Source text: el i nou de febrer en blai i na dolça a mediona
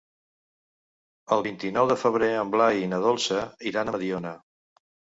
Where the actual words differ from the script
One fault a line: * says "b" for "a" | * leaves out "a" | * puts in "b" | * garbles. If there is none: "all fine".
* puts in "vint"
* puts in "iran"